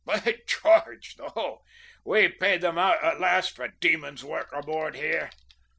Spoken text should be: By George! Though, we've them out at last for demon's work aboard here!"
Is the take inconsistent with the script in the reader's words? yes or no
yes